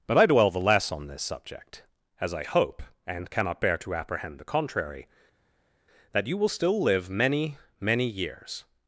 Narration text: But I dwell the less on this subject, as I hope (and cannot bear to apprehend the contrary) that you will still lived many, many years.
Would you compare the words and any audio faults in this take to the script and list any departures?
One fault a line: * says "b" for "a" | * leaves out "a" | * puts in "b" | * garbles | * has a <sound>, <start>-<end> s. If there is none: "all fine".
* says "live" for "lived"